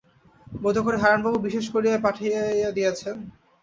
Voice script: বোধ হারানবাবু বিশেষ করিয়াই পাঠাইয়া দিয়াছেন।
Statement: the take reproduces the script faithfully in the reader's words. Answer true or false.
false